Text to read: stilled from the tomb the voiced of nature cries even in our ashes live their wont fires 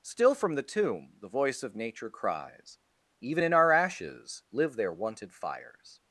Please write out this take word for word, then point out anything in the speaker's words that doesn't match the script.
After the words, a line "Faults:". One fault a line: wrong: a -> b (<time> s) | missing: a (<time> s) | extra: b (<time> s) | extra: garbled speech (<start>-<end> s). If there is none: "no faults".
still from the tomb the voice of nature cries even in our ashes live their wonted fires
Faults:
wrong: stilled -> still (0.0 s)
wrong: voiced -> voice (1.3 s)
wrong: wont -> wonted (4.9 s)